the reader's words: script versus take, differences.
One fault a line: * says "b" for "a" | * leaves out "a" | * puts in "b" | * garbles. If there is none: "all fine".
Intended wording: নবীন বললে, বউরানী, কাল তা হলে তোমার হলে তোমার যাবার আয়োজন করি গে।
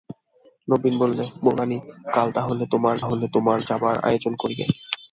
all fine